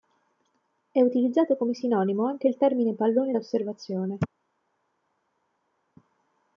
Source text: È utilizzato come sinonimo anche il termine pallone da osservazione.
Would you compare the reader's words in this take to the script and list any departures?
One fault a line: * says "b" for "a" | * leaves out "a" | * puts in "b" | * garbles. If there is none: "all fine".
all fine